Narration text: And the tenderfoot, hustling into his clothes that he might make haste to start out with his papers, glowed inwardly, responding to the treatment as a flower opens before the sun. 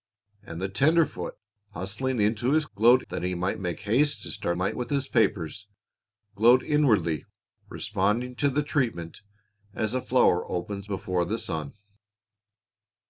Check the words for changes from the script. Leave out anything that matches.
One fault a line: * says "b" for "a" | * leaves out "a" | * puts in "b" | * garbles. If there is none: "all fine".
* says "glowed" for "clothes"
* says "might" for "out"